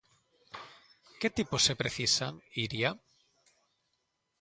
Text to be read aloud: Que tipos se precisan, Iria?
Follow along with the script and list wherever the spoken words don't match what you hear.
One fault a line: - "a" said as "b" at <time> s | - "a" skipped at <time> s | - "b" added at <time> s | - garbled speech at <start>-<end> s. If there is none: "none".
none